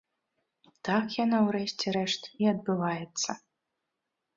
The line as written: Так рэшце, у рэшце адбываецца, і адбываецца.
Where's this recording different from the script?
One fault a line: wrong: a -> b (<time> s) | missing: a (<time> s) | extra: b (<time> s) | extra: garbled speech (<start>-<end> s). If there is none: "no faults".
wrong: рэшце -> яно (1.2 s)
wrong: адбываецца -> рэшт (2.0 s)